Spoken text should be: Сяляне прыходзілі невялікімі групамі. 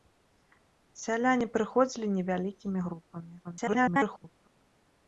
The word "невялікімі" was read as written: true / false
true